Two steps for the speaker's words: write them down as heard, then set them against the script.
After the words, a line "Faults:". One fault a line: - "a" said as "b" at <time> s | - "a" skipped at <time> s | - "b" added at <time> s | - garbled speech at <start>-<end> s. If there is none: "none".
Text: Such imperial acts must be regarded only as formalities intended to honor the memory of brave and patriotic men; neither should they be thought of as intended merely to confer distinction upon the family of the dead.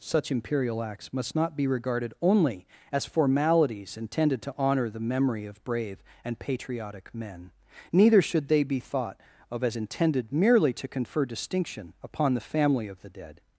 Such imperial acts must not be regarded only as formalities intended to honor the memory of brave and patriotic men; neither should they be thought of as intended merely to confer distinction upon the family of the dead.
Faults:
- "not" added at 1.4 s